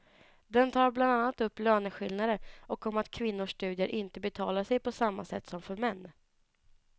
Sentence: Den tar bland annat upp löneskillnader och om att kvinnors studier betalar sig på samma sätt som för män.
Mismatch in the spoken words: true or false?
true